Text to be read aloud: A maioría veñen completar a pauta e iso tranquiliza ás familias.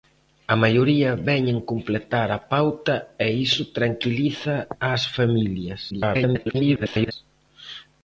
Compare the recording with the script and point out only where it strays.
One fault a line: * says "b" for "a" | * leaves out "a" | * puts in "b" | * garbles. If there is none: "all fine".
* garbles